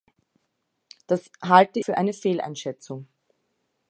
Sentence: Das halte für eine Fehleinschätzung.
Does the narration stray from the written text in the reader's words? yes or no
no